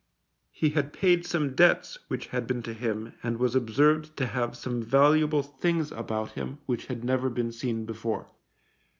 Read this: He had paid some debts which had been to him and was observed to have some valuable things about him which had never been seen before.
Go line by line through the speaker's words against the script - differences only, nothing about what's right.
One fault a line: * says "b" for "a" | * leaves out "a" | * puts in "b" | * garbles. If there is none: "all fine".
all fine